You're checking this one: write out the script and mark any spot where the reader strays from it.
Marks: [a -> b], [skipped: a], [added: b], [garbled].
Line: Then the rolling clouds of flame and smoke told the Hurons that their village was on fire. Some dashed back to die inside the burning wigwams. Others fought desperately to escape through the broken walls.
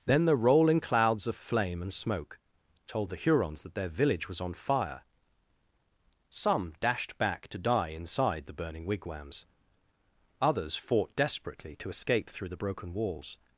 Then the rolling clouds of flame and smoke told the Hurons that their village was on fire. Some dashed back to die inside the burning wigwams. Others fought desperately to escape through the broken walls.